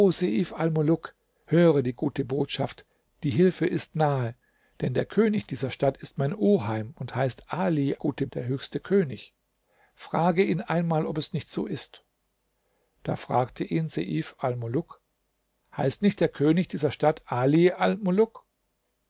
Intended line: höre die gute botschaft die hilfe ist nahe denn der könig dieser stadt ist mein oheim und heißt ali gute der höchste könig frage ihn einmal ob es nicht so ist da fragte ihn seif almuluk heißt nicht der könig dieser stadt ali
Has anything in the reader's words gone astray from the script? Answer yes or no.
no